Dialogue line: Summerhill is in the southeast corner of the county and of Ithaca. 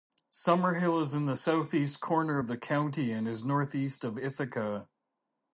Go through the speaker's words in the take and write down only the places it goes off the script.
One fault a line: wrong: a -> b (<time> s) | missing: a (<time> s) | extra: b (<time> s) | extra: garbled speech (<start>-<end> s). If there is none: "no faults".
extra: is northeast (3.3 s)